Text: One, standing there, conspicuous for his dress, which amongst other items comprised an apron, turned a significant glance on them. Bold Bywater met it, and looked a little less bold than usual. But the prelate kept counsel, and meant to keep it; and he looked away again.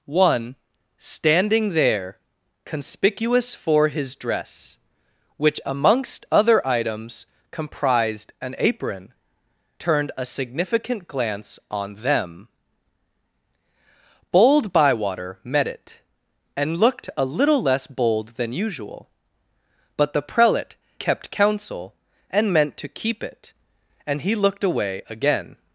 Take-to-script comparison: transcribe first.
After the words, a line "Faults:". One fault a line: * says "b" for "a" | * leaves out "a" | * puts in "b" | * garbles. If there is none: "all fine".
One, standing there, conspicuous for his dress, which amongst other items comprised an apron, turned a significant glance on them. Bold Bywater met it, and looked a little less bold than usual. But the prelate kept counsel, and meant to keep it; and he looked away again.
Faults:
all fine